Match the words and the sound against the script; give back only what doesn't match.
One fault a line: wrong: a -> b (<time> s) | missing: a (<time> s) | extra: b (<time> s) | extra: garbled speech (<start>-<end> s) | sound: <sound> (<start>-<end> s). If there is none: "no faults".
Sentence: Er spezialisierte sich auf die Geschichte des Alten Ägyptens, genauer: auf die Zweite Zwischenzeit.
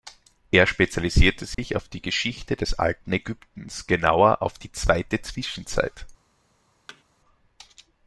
sound: dropout (1.5-1.6 s)
sound: thud (6.9-7.0 s)